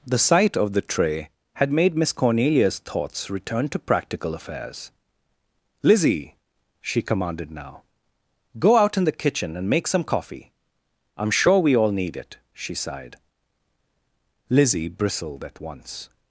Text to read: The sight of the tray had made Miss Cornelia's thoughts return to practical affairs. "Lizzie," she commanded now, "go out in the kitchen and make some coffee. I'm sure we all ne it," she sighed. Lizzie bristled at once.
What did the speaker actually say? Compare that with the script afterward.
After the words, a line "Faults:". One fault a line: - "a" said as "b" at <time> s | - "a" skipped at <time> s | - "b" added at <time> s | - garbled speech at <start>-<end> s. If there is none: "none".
The sight of the tray had made Miss Cornelia's thoughts return to practical affairs. "Lizzie," she commanded now, "go out in the kitchen and make some coffee. I'm sure we all need it," she sighed. Lizzie bristled at once.
Faults:
- "ne" said as "need" at 11.9 s